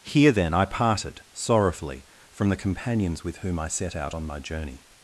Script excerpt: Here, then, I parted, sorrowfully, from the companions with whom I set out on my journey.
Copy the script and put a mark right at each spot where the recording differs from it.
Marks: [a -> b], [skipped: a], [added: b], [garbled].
Here, then, I parted, sorrowfully, from the companions with whom I set out on my journey.